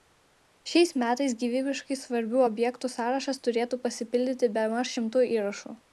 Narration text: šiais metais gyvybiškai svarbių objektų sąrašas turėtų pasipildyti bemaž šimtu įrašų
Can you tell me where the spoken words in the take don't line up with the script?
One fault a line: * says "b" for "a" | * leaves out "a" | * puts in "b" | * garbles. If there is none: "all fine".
all fine